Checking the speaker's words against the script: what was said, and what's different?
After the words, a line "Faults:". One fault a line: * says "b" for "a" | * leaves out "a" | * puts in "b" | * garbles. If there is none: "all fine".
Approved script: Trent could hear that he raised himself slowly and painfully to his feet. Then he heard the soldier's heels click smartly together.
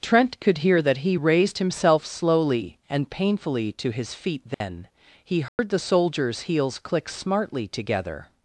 Trent could hear that he raised himself slowly and painfully to his feet. Then he heard the soldier's heels click smartly together.
Faults:
all fine